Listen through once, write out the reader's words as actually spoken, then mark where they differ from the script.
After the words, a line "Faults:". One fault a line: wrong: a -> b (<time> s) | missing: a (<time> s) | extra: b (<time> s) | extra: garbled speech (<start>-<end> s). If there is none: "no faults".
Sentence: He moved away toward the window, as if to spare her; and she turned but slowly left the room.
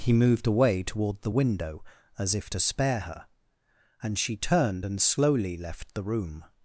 He moved away toward the window, as if to spare her; and she turned and slowly left the room.
Faults:
wrong: but -> and (4.8 s)